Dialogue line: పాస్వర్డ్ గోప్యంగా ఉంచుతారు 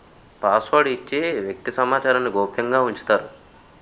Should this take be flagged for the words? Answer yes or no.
yes